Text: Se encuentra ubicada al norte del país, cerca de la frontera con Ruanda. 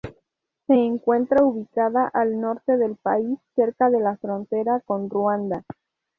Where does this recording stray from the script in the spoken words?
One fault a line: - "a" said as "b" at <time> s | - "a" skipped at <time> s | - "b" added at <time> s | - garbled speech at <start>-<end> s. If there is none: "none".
none